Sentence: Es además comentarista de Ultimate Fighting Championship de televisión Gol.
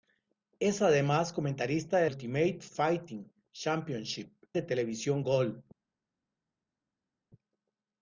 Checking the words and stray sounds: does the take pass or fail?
pass